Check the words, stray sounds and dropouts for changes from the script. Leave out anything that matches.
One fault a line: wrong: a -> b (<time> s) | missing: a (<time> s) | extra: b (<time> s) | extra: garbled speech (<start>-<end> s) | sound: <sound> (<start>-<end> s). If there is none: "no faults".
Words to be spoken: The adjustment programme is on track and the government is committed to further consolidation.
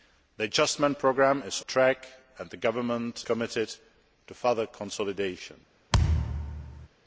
missing: on (1.6 s)
missing: is (3.2 s)
sound: thud (5.9-6.9 s)